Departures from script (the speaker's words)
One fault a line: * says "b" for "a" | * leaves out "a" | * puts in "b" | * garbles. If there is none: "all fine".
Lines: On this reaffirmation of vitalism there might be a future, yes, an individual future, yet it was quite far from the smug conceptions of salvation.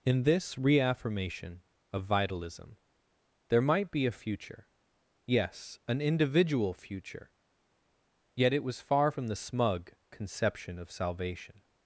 * says "In" for "On"
* leaves out "quite"
* says "conception" for "conceptions"